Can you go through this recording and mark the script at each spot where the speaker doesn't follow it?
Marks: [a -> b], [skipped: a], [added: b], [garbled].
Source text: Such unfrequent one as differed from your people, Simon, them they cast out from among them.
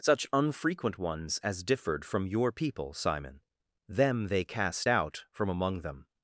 Such unfrequent [one -> ones] as differed from your people, Simon, them they cast out from among them.